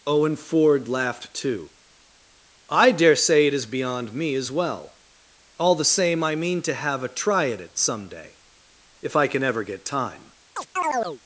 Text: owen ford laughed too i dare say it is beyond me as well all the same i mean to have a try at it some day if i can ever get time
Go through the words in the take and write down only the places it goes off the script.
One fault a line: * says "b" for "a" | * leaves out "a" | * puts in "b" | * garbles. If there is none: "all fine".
all fine